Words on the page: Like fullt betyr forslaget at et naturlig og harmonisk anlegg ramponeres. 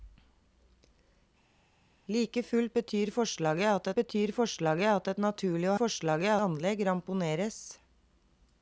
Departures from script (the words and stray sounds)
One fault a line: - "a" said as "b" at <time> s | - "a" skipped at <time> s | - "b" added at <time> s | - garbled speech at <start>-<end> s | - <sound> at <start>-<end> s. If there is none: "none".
- "betyr forslaget at" added at 4.0 s
- "harmonisk" said as "forslaget" at 5.8 s